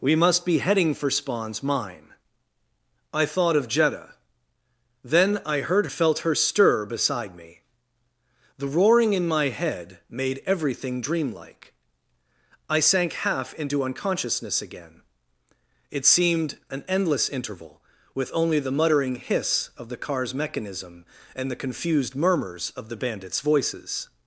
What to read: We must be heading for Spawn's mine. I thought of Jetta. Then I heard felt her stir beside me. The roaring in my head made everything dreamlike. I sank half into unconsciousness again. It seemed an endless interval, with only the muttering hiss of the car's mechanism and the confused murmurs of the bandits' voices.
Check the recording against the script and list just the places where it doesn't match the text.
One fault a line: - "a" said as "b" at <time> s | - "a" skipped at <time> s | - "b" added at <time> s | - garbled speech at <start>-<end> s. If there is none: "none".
none